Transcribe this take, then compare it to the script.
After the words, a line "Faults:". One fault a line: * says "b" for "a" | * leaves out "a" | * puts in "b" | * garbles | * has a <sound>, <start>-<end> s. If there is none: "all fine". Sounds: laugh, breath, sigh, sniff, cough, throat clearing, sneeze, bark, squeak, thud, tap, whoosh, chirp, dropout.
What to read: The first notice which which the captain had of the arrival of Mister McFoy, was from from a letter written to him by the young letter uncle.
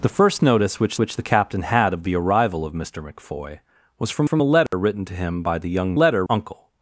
The first notice which which the captain had of the arrival of Mister McFoy, was from from a letter written to him by the young letter uncle.
Faults:
* has a dropout, 4.7-4.7 s